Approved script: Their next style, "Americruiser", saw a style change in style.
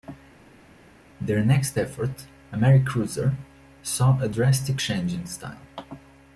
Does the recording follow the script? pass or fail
fail